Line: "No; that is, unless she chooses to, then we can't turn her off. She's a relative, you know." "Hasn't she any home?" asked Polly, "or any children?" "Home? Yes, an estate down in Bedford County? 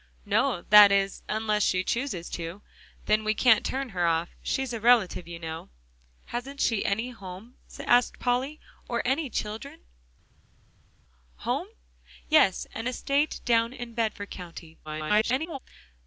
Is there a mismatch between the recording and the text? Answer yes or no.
yes